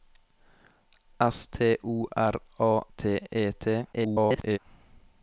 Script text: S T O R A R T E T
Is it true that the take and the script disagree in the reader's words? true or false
true